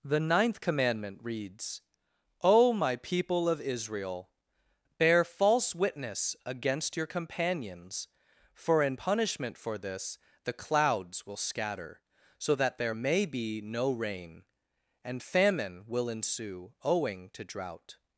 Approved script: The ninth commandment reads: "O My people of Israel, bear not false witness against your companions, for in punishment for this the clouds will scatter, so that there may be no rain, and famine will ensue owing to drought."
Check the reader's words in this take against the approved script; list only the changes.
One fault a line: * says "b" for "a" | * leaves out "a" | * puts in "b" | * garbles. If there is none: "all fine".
* leaves out "not"